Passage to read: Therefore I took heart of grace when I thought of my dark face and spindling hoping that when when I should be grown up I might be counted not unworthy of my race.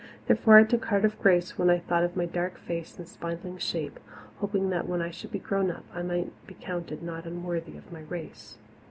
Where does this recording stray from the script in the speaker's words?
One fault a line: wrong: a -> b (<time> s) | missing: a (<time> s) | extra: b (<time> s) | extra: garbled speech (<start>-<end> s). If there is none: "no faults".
extra: shape (3.6 s)
missing: when (5.0 s)